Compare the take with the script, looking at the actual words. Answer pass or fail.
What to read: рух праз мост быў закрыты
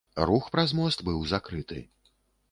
pass